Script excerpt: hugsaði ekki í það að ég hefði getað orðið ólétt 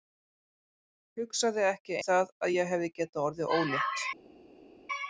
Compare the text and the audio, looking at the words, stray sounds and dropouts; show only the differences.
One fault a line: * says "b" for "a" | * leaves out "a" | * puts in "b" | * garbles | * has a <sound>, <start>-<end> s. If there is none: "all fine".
all fine